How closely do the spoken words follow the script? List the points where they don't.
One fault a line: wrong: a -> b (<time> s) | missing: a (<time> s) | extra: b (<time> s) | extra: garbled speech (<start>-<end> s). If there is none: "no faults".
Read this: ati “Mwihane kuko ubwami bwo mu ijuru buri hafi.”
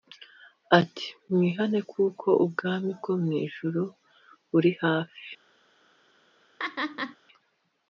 no faults